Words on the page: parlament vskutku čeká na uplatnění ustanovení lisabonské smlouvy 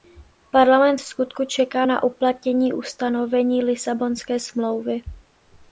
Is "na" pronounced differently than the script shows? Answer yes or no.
no